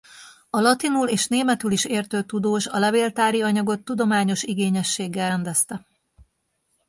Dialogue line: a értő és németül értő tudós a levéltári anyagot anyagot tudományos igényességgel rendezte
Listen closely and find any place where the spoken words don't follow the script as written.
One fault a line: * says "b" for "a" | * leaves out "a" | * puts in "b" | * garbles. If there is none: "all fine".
* says "latinul" for "értő"
* puts in "is"
* leaves out "anyagot"